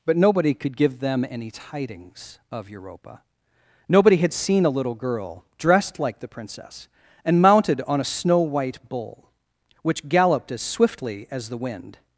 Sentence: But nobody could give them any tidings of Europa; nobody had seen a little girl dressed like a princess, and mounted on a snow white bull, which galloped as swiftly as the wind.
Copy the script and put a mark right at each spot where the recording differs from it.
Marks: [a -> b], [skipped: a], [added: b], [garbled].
But nobody could give them any tidings of Europa; nobody had seen a little girl dressed like [a -> the] princess, and mounted on a snow white bull, which galloped as swiftly as the wind.